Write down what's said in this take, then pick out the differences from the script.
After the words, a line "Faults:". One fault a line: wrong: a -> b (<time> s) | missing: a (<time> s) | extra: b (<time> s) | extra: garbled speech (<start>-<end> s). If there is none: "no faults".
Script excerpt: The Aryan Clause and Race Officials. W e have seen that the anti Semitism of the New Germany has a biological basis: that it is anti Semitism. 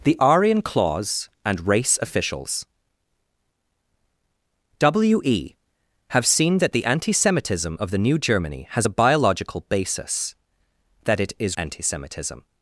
The Aryan Clause and Race Officials. W e have seen that the anti Semitism of the New Germany has a biological basis: that it is anti Semitism.
Faults:
no faults